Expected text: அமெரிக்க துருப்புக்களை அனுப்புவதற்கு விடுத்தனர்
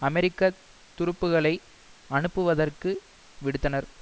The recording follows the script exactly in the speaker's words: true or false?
true